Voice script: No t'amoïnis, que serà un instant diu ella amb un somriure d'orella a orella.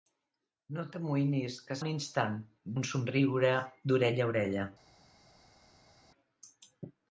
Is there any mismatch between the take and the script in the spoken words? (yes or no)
yes